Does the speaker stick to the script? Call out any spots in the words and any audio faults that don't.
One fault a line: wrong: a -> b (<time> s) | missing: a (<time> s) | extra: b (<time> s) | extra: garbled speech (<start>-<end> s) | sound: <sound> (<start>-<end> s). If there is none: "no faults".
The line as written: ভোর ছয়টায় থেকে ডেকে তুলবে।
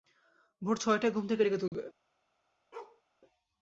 extra: ঘুম (1.1 s)
sound: dropout (1.7-1.7 s)
sound: bark (2.7-3.0 s)